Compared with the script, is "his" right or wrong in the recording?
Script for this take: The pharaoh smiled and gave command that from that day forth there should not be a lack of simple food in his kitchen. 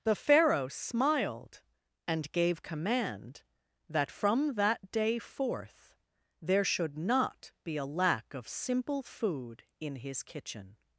right